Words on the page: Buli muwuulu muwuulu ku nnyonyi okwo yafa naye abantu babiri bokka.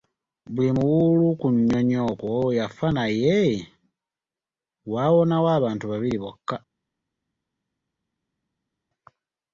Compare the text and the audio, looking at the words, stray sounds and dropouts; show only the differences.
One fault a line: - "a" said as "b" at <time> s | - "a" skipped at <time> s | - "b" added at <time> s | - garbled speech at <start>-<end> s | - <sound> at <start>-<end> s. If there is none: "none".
- "muwuulu" skipped at 1.3 s
- "waawonawo" added at 4.9 s